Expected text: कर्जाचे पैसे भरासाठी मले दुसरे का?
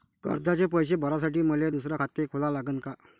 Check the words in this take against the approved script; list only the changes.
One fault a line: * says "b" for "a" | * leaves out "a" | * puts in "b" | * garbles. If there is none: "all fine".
* puts in "खाते खोला लागन"